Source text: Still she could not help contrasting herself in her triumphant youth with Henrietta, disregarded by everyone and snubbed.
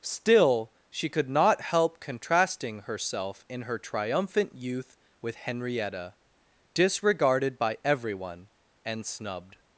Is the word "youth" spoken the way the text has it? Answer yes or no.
yes